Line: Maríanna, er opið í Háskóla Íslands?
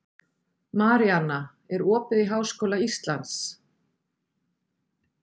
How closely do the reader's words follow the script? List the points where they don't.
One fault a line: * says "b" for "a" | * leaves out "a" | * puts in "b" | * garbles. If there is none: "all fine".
all fine